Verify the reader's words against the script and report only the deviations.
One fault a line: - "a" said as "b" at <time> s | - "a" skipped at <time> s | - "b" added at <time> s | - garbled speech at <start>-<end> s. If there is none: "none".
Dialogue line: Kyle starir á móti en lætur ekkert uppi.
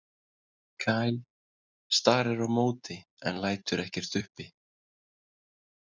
none